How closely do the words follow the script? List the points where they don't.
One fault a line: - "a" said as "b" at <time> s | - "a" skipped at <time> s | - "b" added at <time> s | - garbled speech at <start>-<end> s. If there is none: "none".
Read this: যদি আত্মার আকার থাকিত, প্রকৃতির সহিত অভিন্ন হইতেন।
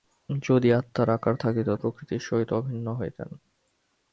none